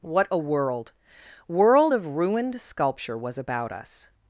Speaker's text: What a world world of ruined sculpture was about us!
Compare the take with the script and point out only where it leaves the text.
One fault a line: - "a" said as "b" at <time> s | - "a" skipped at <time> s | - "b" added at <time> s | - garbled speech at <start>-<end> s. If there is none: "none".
none